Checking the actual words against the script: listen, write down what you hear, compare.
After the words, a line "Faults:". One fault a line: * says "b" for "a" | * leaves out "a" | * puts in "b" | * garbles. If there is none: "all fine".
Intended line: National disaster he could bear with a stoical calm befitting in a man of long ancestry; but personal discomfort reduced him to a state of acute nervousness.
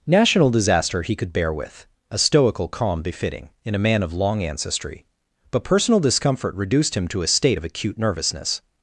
National disaster he could bear with a stoical calm befitting in a man of long ancestry; but personal discomfort reduced him to a state of acute nervousness.
Faults:
all fine